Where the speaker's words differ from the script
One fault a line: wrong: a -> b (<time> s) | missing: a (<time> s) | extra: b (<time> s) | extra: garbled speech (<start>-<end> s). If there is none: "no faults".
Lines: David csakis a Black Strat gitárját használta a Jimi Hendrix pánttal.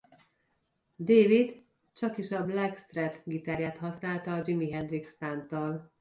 no faults